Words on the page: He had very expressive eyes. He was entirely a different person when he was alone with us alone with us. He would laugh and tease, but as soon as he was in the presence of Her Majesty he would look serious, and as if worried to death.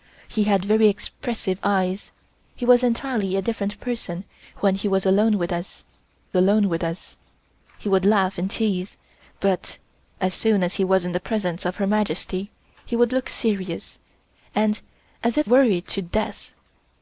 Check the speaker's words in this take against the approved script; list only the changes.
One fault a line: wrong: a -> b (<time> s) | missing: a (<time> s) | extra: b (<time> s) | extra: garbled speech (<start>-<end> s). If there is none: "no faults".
no faults